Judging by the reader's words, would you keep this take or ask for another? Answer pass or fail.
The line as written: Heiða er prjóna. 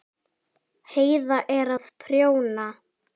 fail